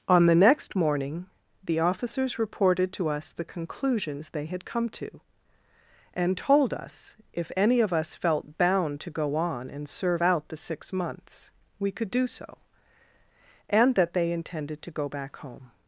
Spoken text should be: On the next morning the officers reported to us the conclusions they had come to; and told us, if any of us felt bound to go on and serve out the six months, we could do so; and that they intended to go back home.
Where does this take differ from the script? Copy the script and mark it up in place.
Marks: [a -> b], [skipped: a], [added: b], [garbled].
On the next morning the officers reported to us the conclusions they had come to; and told us, if any of us felt bound to go on and serve out the six months, we could do so; and that they intended to go back home.